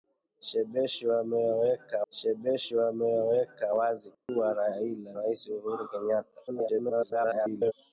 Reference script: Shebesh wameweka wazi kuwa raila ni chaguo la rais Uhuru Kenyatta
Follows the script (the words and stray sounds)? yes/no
no